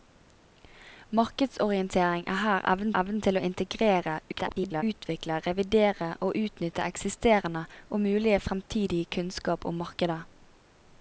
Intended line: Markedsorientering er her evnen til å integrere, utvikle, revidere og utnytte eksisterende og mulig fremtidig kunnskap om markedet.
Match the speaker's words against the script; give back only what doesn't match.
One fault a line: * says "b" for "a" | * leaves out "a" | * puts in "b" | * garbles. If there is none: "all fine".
* puts in "evnen"
* garbles